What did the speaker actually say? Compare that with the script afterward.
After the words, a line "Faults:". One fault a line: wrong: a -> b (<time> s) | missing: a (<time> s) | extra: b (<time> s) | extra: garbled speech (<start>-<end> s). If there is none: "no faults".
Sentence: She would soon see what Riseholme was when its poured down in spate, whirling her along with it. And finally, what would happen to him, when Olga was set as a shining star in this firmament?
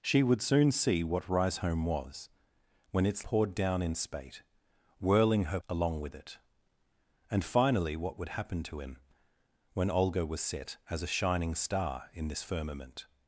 She would soon see what Riseholme was when its poured down in spate, whirling her along with it. And finally, what would happen to him, when Olga was set as a shining star in this firmament?
Faults:
no faults